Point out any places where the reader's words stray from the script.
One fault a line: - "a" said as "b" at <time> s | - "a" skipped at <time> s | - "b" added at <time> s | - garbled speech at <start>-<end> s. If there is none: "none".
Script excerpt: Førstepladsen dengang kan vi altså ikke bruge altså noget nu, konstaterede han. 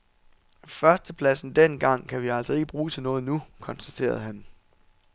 - "altså" said as "til" at 2.9 s